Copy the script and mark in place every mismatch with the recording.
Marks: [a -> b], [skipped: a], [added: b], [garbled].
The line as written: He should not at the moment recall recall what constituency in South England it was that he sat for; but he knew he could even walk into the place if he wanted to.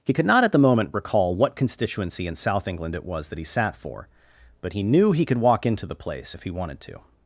He [should -> could] not at the moment recall [skipped: recall] what constituency in South England it was that he sat for; but he knew he could [skipped: even] walk into the place if he wanted to.